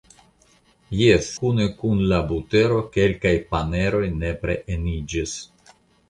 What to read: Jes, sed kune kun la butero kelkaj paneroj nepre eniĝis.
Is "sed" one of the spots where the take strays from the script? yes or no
yes